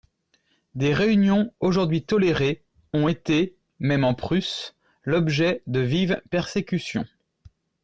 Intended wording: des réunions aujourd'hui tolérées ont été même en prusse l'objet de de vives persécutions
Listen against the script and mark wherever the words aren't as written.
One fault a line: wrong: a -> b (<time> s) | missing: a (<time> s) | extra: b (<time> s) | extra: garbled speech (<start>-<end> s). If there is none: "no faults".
missing: de (5.8 s)